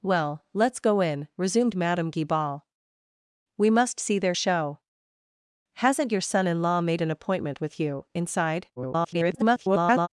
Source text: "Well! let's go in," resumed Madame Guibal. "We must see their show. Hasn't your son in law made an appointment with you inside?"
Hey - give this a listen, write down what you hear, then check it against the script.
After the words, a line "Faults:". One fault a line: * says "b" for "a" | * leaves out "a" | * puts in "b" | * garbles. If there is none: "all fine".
"Well! let's go in," resumed Madame Guibal. "We must see their show. Hasn't your son in law made an appointment with you inside?" [garbled]
Faults:
* garbles